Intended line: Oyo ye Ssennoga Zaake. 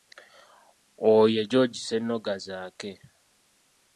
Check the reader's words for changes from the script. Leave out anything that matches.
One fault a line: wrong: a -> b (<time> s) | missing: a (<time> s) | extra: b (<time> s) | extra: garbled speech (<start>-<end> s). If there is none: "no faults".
extra: George (1.5 s)